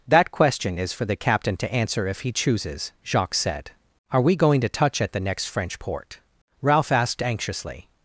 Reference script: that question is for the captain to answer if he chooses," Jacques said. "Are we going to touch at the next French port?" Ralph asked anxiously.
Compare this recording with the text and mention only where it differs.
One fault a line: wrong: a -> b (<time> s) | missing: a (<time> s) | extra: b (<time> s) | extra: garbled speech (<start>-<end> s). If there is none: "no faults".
no faults